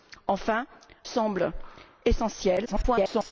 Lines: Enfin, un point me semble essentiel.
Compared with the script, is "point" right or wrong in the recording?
wrong